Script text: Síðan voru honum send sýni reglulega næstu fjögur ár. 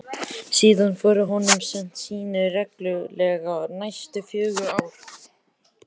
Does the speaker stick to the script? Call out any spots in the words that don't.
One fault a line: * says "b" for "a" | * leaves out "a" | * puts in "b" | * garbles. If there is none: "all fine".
all fine